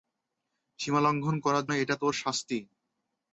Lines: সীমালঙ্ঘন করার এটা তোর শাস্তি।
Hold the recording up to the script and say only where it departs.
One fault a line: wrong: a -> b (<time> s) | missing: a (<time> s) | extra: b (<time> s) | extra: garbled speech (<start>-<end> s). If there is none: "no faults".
no faults